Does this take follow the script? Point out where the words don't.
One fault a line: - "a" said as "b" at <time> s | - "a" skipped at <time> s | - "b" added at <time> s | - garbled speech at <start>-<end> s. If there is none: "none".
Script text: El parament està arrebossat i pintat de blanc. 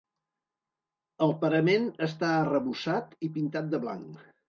none